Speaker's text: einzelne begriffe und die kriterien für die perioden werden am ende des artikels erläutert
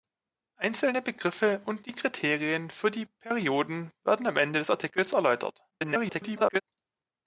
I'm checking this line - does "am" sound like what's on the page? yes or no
yes